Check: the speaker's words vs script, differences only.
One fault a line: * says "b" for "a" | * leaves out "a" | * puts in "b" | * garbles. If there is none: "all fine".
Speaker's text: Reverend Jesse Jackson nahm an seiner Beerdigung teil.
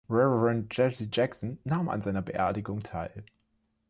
all fine